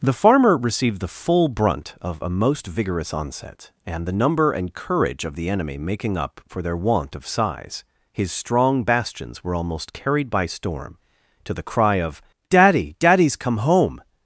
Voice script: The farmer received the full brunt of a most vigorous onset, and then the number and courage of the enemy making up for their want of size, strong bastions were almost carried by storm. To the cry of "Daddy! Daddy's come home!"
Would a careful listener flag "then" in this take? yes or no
yes